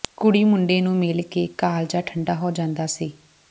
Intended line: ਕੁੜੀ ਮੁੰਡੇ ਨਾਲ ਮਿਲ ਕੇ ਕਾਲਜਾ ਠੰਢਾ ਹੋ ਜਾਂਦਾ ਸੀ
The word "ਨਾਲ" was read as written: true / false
false